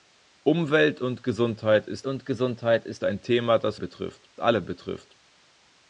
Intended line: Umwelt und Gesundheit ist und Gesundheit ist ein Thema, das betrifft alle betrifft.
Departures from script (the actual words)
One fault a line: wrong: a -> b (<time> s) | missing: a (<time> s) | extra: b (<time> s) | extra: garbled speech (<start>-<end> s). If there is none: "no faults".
no faults